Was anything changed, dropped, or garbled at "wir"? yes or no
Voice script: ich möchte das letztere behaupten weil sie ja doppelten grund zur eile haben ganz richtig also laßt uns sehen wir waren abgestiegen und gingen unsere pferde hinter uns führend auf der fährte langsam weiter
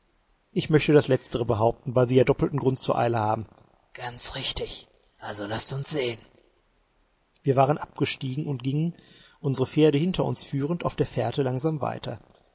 no